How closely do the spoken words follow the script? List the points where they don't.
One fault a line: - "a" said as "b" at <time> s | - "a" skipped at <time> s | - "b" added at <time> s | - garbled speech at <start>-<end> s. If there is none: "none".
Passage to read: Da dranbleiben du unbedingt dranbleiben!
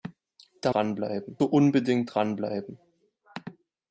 none